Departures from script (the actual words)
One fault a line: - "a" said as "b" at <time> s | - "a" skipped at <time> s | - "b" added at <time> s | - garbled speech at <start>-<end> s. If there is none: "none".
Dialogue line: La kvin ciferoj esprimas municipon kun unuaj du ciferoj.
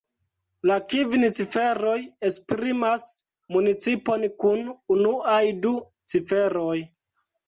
none